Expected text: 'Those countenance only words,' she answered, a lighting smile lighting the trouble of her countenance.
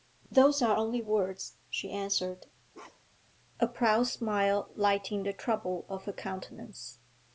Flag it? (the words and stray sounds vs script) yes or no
yes